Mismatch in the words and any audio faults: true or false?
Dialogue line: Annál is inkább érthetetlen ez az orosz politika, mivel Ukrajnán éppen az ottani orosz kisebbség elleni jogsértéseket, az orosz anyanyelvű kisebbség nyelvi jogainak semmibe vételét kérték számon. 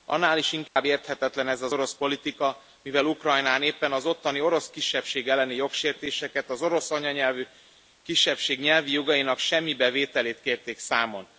true